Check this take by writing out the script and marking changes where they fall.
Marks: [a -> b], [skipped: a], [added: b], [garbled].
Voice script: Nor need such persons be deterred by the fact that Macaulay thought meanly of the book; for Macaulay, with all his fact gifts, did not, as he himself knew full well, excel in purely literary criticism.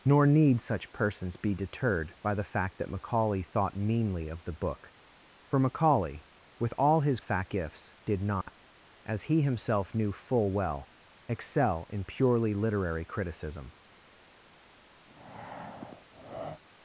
Nor need such persons be deterred by the fact that Macaulay thought meanly of the book; for Macaulay, with all his fact gifts, did not, as he himself knew full well, excel in purely literary criticism.